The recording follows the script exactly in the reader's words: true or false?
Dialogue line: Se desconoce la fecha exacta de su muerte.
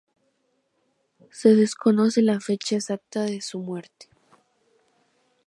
true